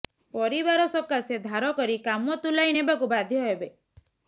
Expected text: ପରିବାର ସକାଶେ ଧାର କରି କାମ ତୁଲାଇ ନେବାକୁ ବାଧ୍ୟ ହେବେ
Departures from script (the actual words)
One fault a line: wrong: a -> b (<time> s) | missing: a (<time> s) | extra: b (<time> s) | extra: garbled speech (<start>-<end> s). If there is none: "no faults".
no faults